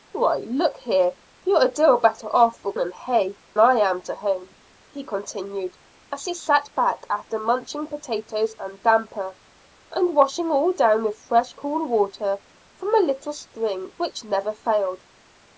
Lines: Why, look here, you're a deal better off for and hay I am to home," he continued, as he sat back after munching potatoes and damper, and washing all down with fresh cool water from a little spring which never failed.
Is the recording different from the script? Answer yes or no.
no